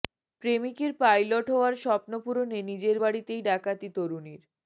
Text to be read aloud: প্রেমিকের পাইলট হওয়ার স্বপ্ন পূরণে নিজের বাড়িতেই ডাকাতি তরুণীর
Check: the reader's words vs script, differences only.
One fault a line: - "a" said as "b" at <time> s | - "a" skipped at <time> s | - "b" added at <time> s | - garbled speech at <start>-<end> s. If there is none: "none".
none